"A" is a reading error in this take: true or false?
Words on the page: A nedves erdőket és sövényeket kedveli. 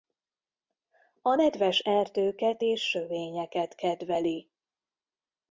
false